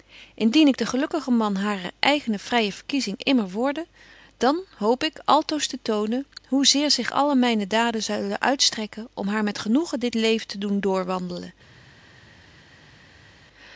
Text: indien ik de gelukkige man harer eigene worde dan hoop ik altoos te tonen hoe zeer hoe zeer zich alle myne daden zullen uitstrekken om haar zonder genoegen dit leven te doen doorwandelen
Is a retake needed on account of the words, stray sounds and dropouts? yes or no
yes